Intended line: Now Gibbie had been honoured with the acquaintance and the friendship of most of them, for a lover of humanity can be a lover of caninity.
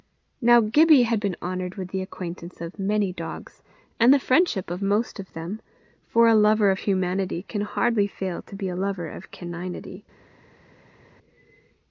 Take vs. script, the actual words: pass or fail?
fail